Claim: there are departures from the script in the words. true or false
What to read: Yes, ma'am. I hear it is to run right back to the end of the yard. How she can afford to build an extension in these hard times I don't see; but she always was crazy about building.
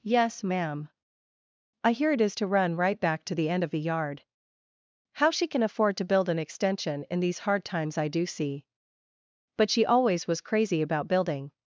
true